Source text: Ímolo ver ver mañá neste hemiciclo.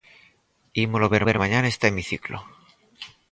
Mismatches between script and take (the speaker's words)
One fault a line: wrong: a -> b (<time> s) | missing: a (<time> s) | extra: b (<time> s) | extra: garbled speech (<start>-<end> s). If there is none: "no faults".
no faults